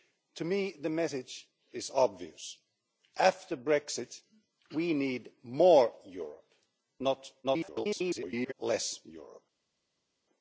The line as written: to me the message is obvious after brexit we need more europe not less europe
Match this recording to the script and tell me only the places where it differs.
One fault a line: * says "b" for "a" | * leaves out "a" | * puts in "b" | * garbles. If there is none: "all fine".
* garbles